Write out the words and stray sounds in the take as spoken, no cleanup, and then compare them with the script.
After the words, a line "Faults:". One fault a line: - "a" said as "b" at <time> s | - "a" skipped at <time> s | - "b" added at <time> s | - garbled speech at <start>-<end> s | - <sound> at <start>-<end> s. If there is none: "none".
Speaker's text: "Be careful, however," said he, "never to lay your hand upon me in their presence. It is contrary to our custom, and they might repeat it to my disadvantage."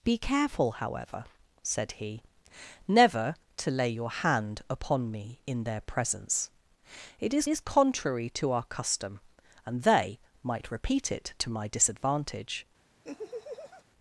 "Be careful, however," said he, "never to lay your hand upon me in their presence. It is is contrary to our custom, and they might repeat it to my disadvantage."
Faults:
- "is" added at 7.5 s
- laugh at 13.0-13.8 s